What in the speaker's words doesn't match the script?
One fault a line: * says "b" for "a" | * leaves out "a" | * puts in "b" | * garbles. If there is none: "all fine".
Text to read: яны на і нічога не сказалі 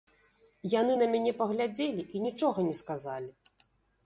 * puts in "мяне паглядзелі"